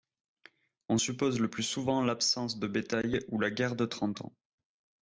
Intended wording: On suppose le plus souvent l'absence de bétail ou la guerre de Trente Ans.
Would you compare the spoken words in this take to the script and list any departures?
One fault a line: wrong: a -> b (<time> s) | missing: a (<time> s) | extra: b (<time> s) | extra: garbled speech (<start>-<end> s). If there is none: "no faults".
no faults